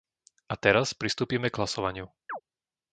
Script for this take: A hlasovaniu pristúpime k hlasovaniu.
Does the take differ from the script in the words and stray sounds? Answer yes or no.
yes